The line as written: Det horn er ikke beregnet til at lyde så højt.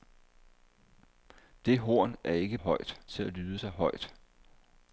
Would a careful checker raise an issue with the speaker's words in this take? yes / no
yes